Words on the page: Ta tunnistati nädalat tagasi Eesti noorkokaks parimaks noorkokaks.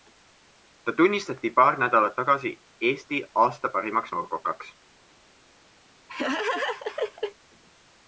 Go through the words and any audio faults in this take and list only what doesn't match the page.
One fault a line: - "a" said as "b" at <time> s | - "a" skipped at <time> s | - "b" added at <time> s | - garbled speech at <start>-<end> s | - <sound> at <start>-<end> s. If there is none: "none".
- "paar" added at 1.6 s
- "noorkokaks" said as "aasta" at 3.5 s
- laugh at 6.1-7.4 s